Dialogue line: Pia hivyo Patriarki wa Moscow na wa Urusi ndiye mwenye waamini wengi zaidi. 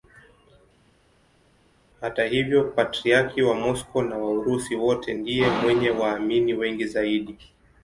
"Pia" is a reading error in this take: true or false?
true